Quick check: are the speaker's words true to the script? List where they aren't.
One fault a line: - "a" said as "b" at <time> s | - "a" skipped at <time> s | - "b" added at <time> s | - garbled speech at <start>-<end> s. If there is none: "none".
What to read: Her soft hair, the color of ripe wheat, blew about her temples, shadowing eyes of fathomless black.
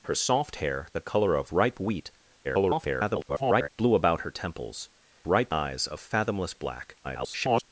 - garbled speech at 2.4-3.7 s
- "shadowing" said as "ripe" at 5.3 s
- garbled speech at 7.0-7.6 s